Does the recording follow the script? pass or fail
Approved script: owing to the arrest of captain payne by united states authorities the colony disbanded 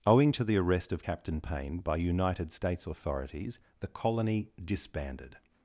pass